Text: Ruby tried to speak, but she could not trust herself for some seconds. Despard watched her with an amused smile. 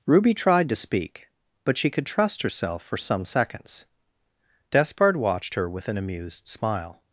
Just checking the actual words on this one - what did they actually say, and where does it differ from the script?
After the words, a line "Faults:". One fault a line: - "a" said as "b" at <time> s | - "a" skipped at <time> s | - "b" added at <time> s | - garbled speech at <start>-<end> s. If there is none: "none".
Ruby tried to speak, but she could trust herself for some seconds. Despard watched her with an amused smile.
Faults:
- "not" skipped at 2.0 s